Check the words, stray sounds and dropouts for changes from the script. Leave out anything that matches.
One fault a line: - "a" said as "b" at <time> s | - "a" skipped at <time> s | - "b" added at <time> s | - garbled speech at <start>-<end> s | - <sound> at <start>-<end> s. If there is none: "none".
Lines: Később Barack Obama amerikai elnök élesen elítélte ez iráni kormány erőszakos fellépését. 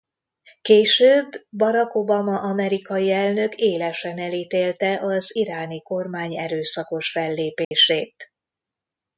- "ez" said as "az" at 5.0 s
- dropout at 7.6-7.7 s